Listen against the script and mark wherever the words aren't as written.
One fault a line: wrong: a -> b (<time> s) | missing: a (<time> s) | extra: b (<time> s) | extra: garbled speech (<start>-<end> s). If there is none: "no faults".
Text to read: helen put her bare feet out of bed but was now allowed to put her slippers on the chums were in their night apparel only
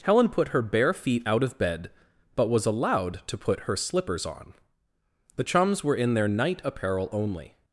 missing: now (2.7 s)